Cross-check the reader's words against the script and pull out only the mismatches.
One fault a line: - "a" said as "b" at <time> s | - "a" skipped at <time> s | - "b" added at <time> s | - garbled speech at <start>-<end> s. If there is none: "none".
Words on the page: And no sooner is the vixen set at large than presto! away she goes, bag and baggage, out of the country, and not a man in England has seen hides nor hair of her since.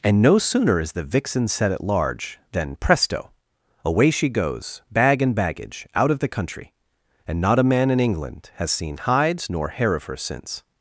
none